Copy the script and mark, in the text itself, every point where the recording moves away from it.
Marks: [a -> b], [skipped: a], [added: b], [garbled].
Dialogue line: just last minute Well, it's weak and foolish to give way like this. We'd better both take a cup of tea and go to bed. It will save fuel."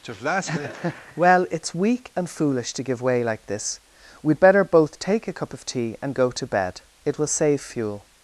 just last minute Well, it's weak and foolish to give way like this. We'd better both take a cup of tea and go to bed. It will save fuel."